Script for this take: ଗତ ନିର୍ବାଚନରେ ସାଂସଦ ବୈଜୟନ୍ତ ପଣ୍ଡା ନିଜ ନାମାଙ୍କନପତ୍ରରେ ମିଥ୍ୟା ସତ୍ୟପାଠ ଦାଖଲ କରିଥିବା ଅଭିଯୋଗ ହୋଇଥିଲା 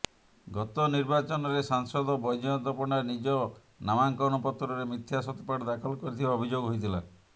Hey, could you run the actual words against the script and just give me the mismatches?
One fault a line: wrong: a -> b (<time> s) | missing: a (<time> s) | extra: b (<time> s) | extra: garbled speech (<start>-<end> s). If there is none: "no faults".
no faults